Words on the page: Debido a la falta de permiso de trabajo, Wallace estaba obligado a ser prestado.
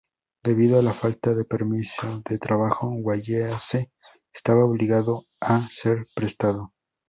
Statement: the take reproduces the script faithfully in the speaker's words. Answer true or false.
true